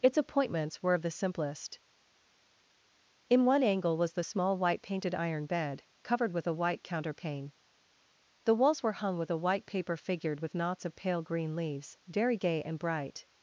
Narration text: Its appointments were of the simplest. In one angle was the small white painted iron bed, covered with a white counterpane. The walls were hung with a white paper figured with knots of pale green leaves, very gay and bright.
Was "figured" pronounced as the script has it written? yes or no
yes